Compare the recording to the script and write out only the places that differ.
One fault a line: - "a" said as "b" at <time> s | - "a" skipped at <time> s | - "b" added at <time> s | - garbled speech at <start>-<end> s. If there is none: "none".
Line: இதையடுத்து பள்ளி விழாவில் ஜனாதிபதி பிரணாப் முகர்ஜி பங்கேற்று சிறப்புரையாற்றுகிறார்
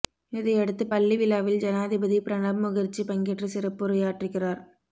none